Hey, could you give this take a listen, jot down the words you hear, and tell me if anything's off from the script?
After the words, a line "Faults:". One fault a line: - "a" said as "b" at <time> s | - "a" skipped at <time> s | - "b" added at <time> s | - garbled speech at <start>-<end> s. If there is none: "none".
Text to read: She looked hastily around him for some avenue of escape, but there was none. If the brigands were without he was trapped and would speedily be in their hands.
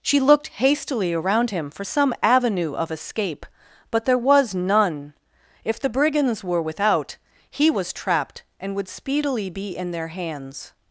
She looked hastily around him for some avenue of escape, but there was none. If the brigands were without he was trapped and would speedily be in their hands.
Faults:
none